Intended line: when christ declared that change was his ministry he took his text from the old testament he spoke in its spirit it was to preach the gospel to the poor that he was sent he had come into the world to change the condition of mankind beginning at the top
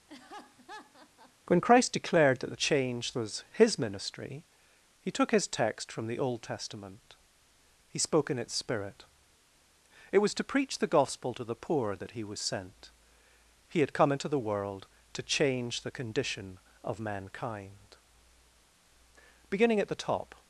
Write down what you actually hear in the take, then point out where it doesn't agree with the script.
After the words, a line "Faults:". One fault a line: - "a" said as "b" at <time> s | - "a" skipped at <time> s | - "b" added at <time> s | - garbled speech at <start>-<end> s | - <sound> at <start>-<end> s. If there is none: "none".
when christ declared that change was his ministry he took his text from the old testament he spoke in its spirit it was to preach the gospel to the poor that he was sent he had come into the world to change the condition of mankind beginning at the top
Faults:
- laugh at 0.1-1.3 s